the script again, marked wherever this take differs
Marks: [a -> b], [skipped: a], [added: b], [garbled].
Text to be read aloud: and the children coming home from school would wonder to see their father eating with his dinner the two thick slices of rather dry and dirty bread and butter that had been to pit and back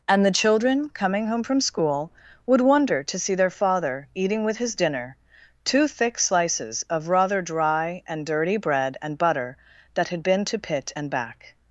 and the children coming home from school would wonder to see their father eating with his dinner [skipped: the] two thick slices of rather dry and dirty bread and butter that had been to pit and back